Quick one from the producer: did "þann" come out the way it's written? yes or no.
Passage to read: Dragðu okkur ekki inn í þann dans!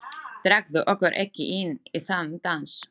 yes